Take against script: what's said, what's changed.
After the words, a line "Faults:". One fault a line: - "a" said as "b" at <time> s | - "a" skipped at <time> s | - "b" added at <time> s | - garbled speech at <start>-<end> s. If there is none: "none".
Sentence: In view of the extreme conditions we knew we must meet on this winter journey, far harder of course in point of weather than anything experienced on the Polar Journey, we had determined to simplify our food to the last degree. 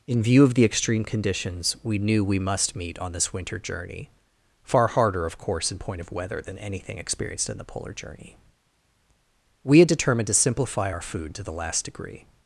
In view of the extreme conditions we knew we must meet on this winter journey, far harder of course in point of weather than anything experienced in the Polar Journey, we had determined to simplify our food to the last degree.
Faults:
- "on" said as "in" at 7.5 s